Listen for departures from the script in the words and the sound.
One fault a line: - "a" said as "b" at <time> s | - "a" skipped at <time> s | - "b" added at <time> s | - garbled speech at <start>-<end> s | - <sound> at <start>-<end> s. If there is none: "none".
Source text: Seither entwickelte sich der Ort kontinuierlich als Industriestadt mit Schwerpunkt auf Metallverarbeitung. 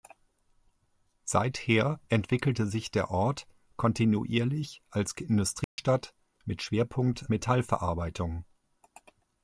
- dropout at 5.6-5.8 s
- "auf" skipped at 7.3 s